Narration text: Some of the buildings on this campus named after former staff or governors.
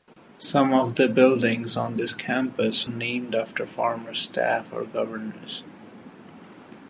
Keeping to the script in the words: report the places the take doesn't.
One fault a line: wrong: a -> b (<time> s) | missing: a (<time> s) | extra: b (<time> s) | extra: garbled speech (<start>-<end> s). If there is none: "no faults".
no faults